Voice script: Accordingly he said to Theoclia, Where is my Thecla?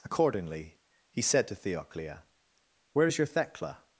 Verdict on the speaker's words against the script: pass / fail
fail